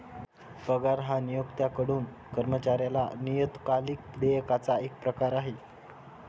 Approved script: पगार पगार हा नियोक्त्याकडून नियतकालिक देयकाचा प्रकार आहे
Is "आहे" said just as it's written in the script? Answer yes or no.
yes